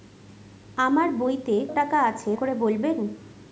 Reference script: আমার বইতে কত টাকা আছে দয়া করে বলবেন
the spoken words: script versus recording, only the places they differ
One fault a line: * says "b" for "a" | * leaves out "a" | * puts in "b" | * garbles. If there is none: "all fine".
* leaves out "কত"
* leaves out "দয়া"